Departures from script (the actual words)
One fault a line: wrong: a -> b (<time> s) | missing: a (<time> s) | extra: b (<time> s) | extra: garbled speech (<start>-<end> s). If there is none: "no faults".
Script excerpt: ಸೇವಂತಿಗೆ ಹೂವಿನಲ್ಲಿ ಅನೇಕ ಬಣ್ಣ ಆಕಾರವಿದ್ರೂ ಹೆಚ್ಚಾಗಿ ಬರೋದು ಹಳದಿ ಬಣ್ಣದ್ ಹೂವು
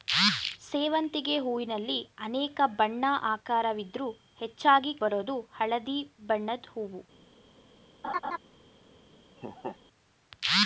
no faults